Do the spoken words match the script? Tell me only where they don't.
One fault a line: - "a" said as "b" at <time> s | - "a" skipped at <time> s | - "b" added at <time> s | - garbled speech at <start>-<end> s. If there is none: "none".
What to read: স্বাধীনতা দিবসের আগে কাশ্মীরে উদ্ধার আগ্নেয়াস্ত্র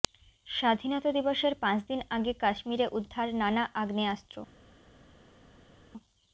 - "পাঁচ দিন" added at 1.6 s
- "নানা" added at 3.4 s